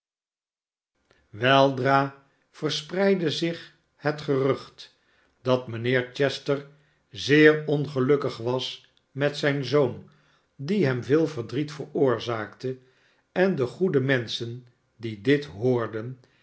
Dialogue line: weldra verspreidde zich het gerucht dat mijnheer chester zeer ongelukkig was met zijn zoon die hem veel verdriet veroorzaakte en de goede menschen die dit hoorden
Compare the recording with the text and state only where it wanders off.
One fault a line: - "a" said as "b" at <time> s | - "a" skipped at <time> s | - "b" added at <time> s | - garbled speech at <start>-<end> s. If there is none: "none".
none